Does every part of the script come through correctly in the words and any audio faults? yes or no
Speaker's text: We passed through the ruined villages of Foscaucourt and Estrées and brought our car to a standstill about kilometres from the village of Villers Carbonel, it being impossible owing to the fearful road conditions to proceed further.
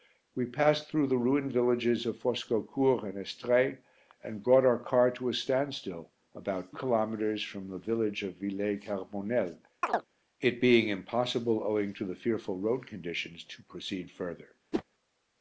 no